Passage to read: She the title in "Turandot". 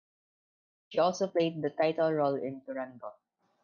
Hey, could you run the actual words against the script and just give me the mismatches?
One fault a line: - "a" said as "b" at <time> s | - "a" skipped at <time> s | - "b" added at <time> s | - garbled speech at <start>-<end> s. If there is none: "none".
- "also played" added at 1.0 s
- "role" added at 2.1 s